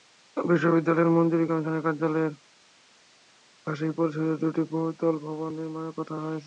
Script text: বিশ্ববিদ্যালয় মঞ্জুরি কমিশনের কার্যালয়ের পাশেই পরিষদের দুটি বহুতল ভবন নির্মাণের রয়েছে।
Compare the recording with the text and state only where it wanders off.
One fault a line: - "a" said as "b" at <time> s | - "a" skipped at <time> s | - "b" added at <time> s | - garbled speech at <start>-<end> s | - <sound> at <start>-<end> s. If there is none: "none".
- "কথা" added at 6.0 s